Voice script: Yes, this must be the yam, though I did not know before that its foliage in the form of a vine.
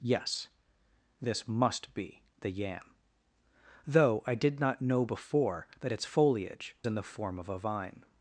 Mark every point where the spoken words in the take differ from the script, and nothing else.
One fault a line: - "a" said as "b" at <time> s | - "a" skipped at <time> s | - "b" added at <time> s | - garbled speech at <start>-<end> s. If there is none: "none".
none